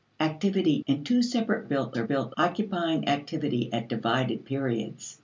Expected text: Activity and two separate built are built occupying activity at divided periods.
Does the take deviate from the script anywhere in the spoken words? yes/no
no